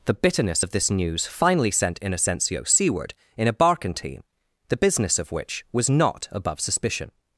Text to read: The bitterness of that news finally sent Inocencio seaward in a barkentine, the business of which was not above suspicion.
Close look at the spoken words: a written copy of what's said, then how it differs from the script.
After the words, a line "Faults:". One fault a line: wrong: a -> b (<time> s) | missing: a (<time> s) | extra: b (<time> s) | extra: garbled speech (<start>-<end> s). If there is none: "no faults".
The bitterness of this news finally sent Inocencio seaward in a barkentine, the business of which was not above suspicion.
Faults:
wrong: that -> this (0.7 s)